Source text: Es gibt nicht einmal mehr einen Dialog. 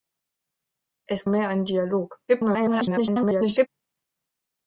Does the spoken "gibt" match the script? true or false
false